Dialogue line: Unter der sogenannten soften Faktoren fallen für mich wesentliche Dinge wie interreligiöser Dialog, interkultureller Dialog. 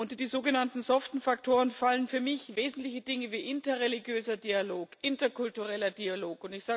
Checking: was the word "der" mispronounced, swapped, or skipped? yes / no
yes